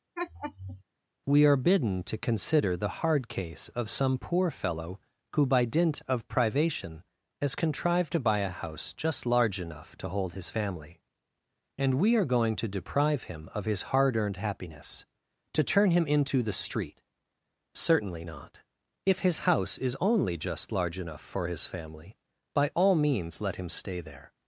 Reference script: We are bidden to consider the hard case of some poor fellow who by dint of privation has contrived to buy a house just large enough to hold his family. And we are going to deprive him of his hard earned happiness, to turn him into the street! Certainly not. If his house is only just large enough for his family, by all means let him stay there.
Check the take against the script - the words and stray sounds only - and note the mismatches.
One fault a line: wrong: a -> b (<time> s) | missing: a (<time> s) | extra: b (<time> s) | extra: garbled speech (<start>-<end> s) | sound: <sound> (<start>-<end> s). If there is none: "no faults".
sound: laugh (0.2-0.8 s)